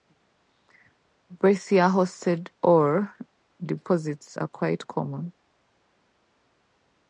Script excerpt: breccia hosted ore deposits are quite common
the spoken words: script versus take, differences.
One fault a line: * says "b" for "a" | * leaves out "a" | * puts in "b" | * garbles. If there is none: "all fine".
all fine